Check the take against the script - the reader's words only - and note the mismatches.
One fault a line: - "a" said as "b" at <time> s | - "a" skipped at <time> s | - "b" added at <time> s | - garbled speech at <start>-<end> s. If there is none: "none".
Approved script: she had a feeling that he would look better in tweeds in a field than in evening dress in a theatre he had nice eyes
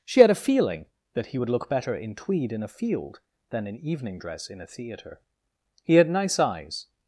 - "tweeds" said as "tweed" at 2.1 s